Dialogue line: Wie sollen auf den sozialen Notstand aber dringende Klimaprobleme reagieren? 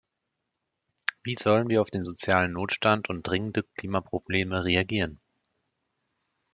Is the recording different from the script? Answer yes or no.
yes